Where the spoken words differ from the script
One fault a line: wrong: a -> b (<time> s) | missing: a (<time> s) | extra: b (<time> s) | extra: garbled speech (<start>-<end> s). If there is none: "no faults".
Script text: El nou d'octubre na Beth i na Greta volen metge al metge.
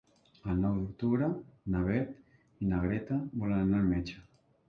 wrong: metge -> anar (3.7 s)